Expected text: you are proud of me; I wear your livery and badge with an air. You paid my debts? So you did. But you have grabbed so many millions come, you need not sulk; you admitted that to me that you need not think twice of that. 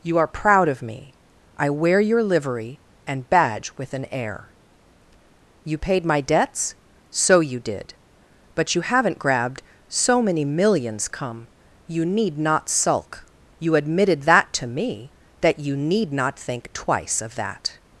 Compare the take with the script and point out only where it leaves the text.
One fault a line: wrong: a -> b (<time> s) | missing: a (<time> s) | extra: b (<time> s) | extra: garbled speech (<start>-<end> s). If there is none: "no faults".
wrong: have -> haven't (8.8 s)